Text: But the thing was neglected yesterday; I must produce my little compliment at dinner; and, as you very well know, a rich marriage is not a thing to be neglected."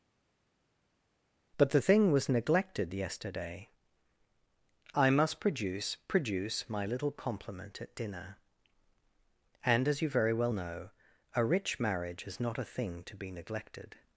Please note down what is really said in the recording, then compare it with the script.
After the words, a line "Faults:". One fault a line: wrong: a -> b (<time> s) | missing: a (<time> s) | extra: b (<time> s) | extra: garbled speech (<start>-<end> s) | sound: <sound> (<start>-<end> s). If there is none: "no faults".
But the thing was neglected yesterday; I must produce produce my little compliment at dinner; and, as you very well know, a rich marriage is not a thing to be neglected."
Faults:
extra: produce (6.1 s)